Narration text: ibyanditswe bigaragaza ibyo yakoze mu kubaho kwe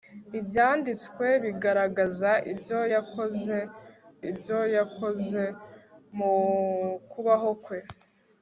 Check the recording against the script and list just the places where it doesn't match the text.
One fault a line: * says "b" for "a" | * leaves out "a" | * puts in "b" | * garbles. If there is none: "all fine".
* puts in "ibyo yakoze"